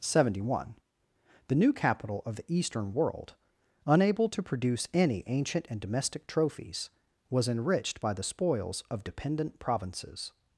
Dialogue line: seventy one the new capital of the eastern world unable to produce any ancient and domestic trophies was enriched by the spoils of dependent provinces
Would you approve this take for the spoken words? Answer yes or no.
yes